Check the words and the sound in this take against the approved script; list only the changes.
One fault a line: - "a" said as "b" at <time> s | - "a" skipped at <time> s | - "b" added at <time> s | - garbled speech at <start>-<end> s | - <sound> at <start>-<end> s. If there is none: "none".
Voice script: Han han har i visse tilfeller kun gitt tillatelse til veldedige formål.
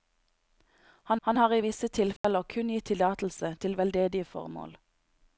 - dropout at 2.2-2.2 s